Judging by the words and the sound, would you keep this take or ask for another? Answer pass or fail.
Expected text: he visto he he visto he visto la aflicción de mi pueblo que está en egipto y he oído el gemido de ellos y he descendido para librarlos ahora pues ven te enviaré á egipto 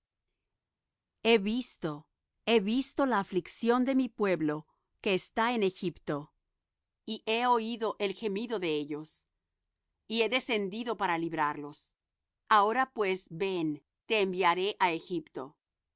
fail